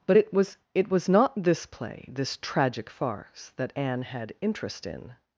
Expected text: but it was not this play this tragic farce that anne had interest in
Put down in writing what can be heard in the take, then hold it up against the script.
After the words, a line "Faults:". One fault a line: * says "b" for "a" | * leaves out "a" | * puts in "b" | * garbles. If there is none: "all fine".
but it was it was not this play this tragic farce that anne had interest in
Faults:
* puts in "it was"